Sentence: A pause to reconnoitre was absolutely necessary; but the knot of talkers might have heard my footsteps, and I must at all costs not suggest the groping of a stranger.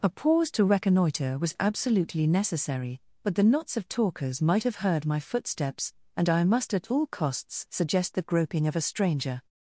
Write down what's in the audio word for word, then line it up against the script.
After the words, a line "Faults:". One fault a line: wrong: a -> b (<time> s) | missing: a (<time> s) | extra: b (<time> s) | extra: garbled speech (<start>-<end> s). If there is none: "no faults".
A pause to reconnoitre was absolutely necessary; but the knots of talkers might have heard my footsteps, and I must at all costs suggest the groping of a stranger.
Faults:
wrong: knot -> knots (3.4 s)
missing: not (7.7 s)